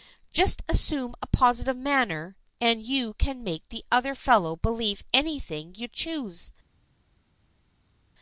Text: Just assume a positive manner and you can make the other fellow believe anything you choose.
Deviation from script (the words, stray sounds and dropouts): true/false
false